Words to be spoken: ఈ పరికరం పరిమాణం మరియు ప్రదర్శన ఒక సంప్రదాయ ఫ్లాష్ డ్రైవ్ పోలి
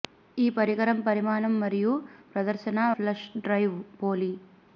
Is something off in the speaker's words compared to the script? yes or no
yes